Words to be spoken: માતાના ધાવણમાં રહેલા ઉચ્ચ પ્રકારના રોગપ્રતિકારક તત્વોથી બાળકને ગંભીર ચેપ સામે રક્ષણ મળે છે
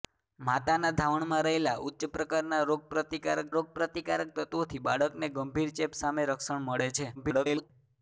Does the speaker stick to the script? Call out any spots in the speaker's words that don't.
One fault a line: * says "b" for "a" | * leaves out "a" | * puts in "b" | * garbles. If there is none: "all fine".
* puts in "રોગપ્રતિકારક"
* garbles